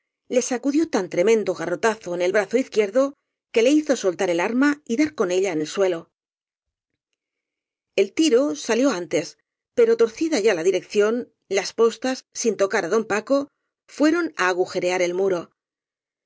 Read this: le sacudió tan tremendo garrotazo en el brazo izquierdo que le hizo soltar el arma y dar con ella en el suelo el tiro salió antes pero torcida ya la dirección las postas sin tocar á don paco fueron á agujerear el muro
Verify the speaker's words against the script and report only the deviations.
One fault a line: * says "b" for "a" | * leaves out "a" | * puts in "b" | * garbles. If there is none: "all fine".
all fine